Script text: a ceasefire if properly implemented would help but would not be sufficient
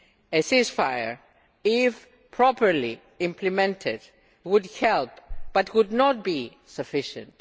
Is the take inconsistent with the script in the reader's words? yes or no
no